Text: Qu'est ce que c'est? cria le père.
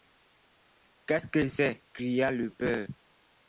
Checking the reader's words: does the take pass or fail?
pass